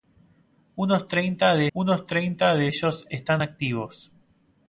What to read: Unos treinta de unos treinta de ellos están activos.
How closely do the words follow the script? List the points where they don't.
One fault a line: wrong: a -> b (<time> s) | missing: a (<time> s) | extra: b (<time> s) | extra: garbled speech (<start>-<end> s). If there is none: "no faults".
no faults